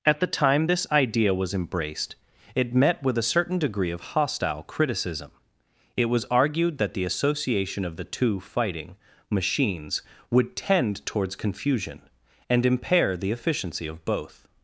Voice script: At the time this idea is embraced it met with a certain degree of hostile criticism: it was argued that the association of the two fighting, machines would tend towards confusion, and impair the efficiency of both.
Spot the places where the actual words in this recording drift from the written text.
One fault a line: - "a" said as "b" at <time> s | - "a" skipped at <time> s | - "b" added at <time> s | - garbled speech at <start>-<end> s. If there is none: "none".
- "is" said as "was" at 1.3 s